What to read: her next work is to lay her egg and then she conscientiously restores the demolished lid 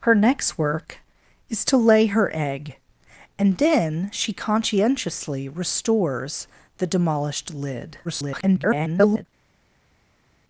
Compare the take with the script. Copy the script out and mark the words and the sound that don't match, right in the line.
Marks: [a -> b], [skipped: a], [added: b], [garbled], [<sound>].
her next work is to lay her egg and then she conscientiously restores the demolished lid [garbled]